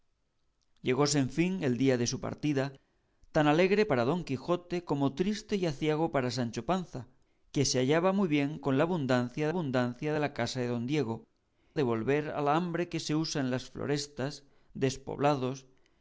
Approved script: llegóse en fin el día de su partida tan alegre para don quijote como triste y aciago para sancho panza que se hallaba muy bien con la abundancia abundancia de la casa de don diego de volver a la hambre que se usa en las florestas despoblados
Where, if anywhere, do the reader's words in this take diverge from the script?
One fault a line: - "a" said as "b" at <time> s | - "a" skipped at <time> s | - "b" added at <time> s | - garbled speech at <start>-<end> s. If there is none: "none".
none